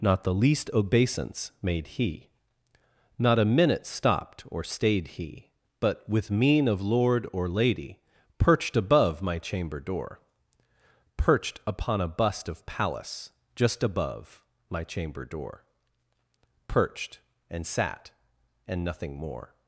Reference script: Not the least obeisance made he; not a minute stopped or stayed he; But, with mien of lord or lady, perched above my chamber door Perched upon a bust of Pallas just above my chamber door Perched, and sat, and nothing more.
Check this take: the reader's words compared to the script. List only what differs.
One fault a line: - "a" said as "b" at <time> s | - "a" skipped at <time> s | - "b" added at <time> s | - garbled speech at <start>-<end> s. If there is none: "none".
none